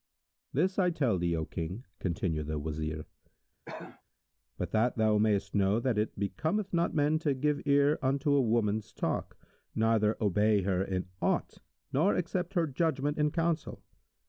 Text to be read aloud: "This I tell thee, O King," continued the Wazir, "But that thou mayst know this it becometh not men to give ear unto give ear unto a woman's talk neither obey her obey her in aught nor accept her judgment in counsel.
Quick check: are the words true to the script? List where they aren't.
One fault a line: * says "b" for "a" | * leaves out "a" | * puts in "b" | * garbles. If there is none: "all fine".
* says "that" for "this"
* leaves out "give ear unto"
* leaves out "obey her"